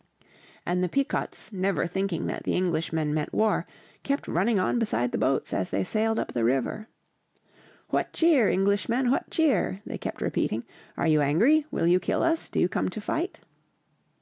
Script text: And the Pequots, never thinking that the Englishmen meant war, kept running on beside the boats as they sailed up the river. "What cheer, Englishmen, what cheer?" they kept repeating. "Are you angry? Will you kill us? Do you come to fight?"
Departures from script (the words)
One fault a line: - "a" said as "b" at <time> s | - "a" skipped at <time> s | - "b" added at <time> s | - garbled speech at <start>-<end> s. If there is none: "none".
none